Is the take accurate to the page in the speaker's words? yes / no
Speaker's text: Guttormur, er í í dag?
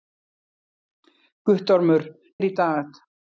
yes